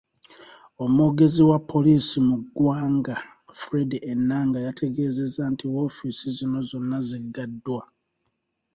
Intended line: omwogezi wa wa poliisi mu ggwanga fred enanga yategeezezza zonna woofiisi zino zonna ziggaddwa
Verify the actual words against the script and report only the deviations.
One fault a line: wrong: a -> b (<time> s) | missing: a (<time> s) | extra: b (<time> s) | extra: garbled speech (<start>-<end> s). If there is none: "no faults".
missing: wa (1.6 s)
wrong: zonna -> nti (5.5 s)